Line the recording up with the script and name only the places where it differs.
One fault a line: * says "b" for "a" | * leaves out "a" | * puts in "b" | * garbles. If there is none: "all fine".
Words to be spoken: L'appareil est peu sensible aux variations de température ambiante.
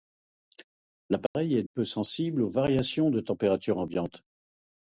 all fine